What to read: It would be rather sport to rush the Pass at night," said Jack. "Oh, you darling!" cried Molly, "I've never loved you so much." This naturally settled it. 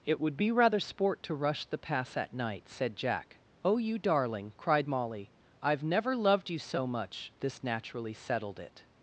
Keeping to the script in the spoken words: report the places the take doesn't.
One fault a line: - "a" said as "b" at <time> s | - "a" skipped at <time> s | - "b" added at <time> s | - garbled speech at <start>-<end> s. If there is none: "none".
none